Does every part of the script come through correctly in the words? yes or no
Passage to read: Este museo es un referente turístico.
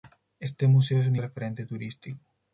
yes